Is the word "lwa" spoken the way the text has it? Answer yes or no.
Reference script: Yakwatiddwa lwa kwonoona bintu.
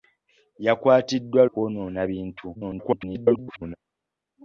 no